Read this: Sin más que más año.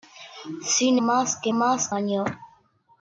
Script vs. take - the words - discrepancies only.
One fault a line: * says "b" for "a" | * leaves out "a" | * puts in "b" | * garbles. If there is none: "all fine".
all fine